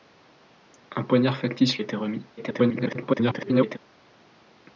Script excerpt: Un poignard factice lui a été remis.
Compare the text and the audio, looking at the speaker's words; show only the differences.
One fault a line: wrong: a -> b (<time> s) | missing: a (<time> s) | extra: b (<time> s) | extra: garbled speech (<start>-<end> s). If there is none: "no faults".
missing: lui (1.8 s)
extra: garbled speech (2.4-3.8 s)